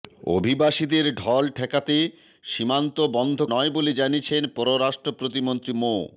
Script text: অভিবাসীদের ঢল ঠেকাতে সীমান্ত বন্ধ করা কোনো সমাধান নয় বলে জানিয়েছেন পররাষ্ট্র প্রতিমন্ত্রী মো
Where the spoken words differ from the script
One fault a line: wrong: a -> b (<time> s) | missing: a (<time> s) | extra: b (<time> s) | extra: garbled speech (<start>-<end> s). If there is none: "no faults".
missing: করা কোনো সমাধান (3.4 s)